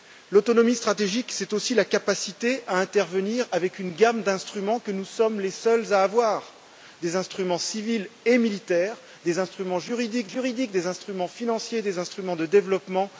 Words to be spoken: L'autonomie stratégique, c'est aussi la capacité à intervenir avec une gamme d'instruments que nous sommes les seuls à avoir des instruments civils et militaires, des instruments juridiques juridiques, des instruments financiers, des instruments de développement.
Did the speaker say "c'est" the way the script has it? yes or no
yes